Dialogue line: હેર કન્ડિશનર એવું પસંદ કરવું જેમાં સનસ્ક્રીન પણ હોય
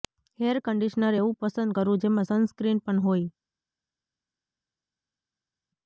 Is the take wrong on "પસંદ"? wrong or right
right